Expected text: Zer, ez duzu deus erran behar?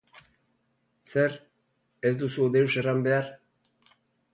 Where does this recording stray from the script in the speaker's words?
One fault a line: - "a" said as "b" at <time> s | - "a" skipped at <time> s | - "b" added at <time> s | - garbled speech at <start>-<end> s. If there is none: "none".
none